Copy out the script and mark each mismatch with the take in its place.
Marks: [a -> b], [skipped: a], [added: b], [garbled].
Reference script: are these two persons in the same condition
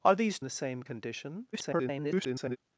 are these [skipped: two persons in] the same condition [garbled]